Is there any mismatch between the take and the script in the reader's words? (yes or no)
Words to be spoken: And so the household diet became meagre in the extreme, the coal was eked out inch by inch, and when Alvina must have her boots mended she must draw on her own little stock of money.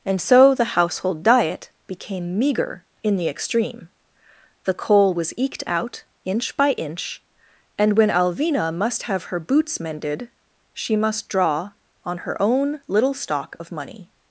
no